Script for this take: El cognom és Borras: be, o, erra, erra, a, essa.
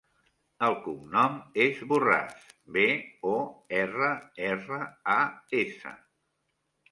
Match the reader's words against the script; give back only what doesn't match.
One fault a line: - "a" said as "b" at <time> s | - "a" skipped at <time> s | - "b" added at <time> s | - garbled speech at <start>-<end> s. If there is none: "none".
none